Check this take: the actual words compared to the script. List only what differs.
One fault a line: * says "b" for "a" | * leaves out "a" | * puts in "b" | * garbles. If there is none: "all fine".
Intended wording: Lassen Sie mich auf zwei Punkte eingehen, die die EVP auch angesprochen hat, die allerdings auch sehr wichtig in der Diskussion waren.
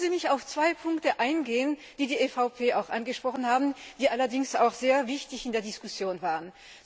all fine